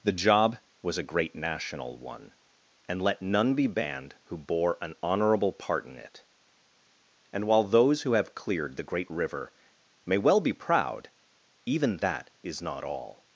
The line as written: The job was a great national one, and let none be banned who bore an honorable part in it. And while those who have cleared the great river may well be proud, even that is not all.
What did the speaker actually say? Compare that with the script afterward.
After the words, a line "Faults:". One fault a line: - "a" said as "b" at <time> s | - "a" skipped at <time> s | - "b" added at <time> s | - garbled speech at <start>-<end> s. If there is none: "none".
The job was a great national one, and let none be banned who bore an honorable part in it. And while those who have cleared the great river may well be proud, even that is not all.
Faults:
none